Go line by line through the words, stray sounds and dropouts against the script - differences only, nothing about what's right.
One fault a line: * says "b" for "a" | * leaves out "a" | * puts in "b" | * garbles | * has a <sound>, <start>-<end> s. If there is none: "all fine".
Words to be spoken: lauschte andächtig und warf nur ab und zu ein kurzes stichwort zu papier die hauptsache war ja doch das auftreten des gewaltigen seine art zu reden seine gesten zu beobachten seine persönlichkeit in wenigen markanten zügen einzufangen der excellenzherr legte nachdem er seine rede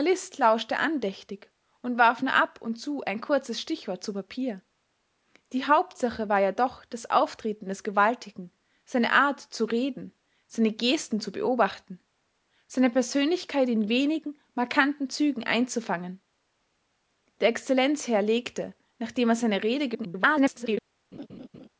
* garbles
* has a laugh, 21.1-21.7 s